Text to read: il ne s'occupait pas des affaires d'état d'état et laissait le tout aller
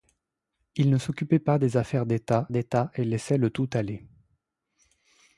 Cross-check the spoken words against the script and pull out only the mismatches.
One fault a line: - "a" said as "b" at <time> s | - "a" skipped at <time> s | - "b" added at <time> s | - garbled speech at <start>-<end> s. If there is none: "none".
none